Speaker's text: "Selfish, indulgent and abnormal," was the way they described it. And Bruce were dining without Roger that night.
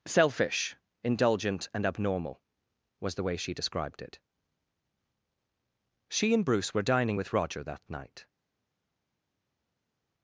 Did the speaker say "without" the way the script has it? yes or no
no